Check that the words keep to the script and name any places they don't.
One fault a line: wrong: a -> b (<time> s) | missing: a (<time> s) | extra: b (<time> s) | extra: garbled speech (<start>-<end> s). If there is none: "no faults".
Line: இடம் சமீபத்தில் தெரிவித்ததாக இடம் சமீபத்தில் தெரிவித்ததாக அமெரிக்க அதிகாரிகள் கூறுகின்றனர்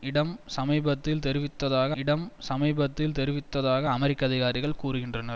no faults